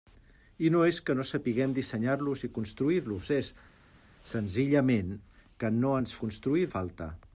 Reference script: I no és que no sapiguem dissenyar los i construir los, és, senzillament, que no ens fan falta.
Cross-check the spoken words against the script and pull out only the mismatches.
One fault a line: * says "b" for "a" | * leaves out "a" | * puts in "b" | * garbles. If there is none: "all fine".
* says "construir" for "fan"